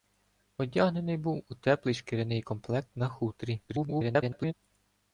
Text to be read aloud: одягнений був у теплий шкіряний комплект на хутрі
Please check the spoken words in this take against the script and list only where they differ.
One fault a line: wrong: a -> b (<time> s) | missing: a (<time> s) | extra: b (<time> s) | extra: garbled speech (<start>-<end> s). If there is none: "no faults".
extra: garbled speech (3.7-4.5 s)